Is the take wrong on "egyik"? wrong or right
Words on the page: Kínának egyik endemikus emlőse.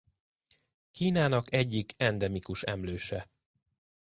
right